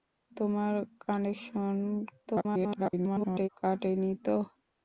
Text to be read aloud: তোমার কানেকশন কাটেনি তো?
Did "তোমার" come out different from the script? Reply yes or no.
no